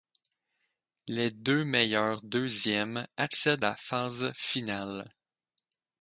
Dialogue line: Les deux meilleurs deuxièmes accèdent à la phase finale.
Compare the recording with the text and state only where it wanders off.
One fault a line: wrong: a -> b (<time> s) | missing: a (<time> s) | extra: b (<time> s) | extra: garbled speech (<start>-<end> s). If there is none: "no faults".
missing: à (3.6 s)